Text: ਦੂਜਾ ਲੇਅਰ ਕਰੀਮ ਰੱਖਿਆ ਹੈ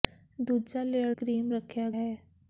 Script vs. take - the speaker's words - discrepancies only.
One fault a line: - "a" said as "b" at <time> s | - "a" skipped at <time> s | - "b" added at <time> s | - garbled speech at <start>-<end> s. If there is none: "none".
none